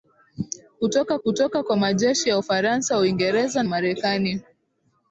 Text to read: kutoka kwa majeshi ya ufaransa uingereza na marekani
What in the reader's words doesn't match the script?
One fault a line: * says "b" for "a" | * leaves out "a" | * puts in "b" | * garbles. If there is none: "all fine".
* puts in "kutoka"
* leaves out "na"